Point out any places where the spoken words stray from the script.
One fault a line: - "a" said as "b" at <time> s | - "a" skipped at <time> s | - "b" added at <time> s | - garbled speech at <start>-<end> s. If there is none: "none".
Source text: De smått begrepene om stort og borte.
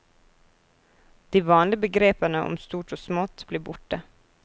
- "smått" said as "vanlige" at 1.4 s
- "smått blir" added at 3.0 s